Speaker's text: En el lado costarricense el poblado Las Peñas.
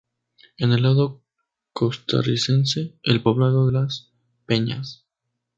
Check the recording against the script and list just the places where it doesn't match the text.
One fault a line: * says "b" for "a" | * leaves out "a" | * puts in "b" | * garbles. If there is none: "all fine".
all fine